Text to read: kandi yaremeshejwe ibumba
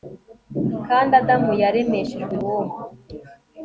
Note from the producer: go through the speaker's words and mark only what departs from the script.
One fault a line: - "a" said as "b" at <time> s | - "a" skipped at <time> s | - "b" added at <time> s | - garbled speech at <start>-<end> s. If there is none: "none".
- "adamu" added at 1.2 s